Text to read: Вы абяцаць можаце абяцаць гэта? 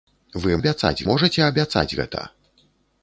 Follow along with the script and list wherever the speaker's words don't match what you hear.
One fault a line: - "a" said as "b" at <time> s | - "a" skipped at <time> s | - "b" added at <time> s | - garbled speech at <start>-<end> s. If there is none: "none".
none